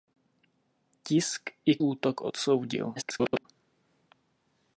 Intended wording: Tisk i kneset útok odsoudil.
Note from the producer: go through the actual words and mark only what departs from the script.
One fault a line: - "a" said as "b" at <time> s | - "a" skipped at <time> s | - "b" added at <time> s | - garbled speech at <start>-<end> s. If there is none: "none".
- "kneset" skipped at 1.8 s
- garbled speech at 3.0-3.5 s